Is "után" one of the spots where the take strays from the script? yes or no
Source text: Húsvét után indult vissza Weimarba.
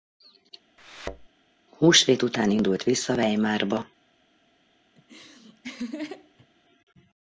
no